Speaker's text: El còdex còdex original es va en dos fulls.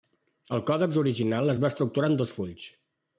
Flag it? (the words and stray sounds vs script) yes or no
yes